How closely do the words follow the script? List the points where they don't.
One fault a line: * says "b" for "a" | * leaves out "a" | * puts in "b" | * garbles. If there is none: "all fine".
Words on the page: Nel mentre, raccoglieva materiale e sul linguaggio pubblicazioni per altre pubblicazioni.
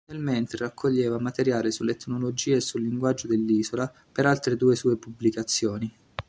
* puts in "sull'etnologia"
* says "dell'isola" for "pubblicazioni"
* puts in "due sue"